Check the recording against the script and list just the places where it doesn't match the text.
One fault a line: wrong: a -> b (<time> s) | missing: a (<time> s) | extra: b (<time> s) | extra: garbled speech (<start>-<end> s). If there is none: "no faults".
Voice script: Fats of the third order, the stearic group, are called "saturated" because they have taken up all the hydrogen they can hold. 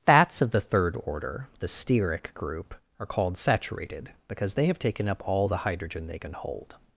no faults